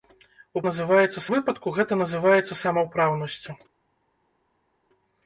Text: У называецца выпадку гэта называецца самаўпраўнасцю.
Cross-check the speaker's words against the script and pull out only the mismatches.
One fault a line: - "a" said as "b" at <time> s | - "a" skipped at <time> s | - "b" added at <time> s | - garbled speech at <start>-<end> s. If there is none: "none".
none